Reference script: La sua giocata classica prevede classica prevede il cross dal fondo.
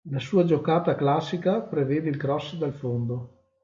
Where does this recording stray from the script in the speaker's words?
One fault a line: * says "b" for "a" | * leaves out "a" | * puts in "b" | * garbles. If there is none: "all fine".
* leaves out "classica prevede"